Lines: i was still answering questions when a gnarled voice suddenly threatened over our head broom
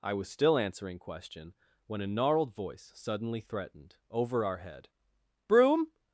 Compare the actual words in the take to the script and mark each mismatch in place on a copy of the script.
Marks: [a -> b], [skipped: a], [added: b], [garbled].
i was still answering [questions -> question] when a gnarled voice suddenly threatened over our head broom